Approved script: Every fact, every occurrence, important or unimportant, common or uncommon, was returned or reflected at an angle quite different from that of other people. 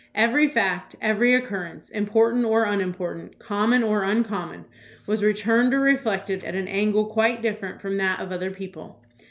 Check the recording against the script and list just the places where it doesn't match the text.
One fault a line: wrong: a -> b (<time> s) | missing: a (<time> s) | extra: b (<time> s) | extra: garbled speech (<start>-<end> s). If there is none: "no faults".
no faults